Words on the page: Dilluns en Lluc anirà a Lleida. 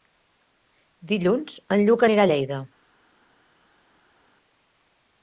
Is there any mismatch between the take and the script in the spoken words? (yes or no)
no